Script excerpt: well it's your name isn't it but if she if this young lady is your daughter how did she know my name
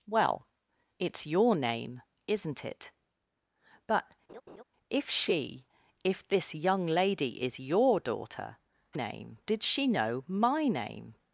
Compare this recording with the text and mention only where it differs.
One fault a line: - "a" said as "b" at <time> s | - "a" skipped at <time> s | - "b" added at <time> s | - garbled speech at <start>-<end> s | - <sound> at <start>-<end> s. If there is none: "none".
- laugh at 4.3-4.6 s
- "how" said as "name" at 8.9 s